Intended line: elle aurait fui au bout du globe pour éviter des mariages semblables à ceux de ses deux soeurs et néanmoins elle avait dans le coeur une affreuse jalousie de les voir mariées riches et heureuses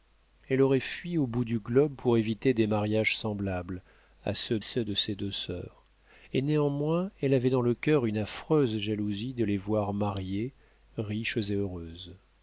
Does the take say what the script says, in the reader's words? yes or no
no